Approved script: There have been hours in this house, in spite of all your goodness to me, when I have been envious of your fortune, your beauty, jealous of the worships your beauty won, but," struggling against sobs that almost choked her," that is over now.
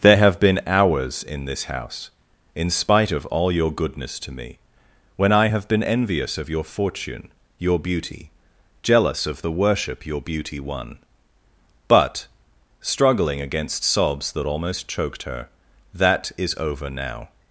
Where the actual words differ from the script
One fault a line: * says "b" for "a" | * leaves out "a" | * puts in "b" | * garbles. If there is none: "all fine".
* says "worship" for "worships"